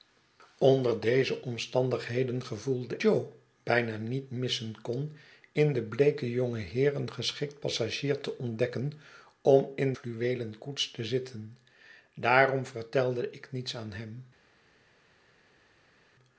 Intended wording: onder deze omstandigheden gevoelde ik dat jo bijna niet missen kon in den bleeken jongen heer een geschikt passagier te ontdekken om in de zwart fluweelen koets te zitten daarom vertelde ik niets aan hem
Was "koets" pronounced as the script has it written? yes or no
yes